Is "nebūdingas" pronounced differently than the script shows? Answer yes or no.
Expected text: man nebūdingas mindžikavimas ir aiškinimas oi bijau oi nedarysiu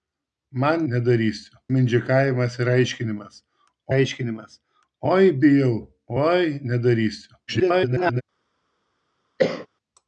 yes